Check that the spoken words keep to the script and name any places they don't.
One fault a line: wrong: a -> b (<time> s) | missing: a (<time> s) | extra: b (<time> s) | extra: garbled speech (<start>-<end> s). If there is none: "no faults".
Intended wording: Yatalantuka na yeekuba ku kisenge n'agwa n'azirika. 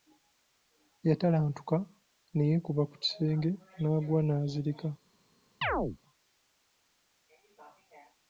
wrong: na -> ne (2.3 s)